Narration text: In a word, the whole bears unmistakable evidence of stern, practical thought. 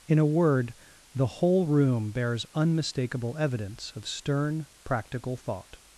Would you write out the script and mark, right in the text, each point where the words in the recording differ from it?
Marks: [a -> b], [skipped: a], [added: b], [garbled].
In a word, the whole [added: room] bears unmistakable evidence of stern, practical thought.